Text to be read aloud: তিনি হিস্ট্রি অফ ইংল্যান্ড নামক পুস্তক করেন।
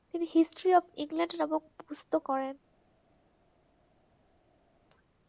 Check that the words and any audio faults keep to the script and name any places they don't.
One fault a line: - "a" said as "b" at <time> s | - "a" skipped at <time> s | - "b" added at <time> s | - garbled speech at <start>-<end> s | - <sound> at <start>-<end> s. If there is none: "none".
none